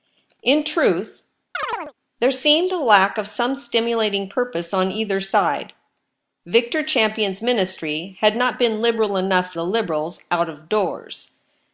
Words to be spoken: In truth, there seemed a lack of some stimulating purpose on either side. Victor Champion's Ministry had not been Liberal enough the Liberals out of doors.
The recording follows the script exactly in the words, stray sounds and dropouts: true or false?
false